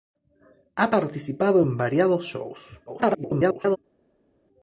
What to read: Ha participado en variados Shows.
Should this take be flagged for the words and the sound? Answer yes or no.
yes